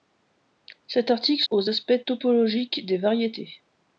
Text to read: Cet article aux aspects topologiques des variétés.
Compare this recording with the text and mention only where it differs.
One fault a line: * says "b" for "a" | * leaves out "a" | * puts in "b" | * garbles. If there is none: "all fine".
all fine